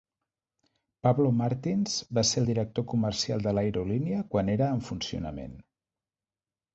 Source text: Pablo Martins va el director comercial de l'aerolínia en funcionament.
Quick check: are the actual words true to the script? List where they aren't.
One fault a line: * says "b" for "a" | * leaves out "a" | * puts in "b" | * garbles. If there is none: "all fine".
* puts in "ser"
* puts in "quan era"